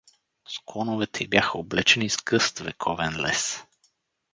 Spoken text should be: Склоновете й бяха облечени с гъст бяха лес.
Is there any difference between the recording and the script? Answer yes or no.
yes